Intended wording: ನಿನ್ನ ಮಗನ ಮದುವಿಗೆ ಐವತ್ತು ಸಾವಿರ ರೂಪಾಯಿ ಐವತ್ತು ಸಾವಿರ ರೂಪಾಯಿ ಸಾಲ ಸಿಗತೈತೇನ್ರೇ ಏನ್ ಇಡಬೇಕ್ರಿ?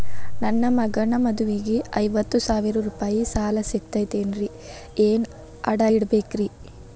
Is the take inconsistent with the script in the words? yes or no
yes